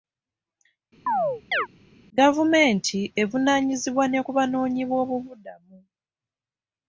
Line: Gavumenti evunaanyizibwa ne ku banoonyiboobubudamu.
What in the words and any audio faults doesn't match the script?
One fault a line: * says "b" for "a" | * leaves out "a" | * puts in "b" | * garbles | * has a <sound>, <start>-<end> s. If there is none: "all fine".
* has a chirp, 1.1-1.7 s